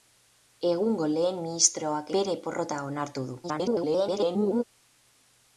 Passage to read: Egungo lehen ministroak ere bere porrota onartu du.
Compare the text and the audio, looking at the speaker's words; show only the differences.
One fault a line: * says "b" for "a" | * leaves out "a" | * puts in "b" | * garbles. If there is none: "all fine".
* leaves out "ere"
* garbles